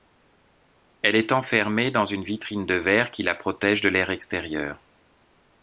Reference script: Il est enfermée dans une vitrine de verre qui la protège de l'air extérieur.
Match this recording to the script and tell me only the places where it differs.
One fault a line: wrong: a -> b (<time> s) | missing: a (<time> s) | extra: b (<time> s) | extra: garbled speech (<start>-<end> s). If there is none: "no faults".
wrong: Il -> Elle (1.0 s)